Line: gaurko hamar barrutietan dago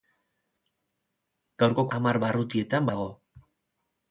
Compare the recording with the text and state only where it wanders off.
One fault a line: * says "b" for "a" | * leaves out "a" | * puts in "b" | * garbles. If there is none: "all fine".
all fine